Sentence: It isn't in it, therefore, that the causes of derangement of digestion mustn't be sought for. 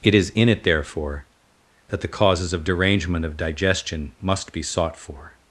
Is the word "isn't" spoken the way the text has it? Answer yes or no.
no